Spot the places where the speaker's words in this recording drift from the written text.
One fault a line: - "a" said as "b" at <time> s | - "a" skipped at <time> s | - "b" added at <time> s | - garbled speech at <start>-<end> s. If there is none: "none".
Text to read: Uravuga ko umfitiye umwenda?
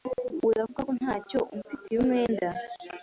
- "ntacyo" added at 1.0 s